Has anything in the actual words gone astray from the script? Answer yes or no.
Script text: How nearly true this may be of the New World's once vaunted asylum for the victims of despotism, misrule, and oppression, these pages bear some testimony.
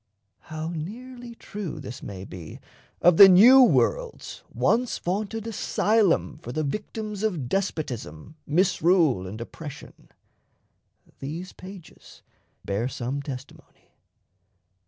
no